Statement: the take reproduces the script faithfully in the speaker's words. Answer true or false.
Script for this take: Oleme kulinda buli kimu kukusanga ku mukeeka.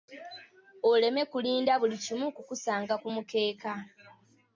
true